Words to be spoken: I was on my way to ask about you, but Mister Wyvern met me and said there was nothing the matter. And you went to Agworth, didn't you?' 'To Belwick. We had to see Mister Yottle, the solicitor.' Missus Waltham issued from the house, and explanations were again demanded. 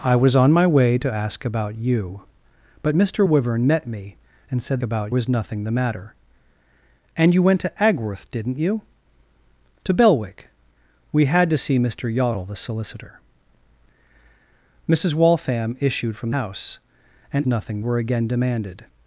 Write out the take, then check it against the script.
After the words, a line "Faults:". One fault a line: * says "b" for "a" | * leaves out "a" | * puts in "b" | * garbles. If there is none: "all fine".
I was on my way to ask about you, but Mister Wyvern met me and said about was nothing the matter. And you went to Agworth, didn't you?' 'To Belwick. We had to see Mister Yottle, the solicitor.' Missus Waltham issued from house, and nothing were again demanded.
Faults:
* says "about" for "there"
* leaves out "the"
* says "nothing" for "explanations"